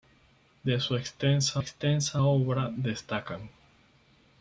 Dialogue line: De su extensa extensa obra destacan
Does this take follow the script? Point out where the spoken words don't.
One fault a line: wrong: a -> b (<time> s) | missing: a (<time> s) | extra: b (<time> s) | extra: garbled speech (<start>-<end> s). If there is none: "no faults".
no faults